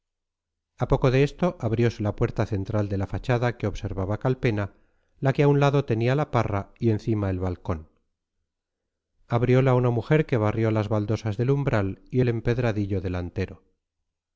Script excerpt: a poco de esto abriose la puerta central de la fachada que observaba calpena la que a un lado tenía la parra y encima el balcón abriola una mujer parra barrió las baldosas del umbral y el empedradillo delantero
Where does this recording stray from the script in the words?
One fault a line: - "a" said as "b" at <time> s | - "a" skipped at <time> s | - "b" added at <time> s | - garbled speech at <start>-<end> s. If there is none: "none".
- "parra" said as "que" at 10.2 s